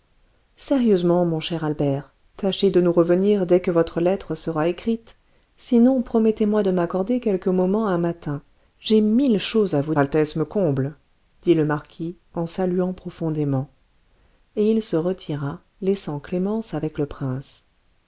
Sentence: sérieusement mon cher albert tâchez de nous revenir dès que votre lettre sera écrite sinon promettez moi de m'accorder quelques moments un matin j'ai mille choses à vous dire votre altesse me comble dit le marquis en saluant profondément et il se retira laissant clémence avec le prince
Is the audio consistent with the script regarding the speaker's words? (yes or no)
no